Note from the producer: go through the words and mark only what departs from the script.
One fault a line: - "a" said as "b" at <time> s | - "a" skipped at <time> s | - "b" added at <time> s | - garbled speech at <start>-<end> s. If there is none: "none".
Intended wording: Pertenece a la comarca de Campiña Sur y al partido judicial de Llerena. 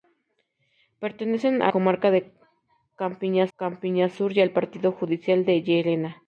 - "la" skipped at 1.7 s
- "Campiña" added at 3.6 s